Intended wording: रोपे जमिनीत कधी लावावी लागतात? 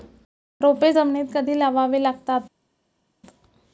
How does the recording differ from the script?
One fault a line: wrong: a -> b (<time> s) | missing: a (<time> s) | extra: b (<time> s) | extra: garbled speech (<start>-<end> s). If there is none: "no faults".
no faults